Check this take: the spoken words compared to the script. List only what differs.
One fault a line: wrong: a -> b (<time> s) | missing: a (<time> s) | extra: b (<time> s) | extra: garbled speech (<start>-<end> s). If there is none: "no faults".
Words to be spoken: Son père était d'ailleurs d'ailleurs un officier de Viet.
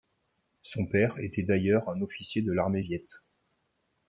missing: d'ailleurs (1.9 s)
extra: l'armée (2.5 s)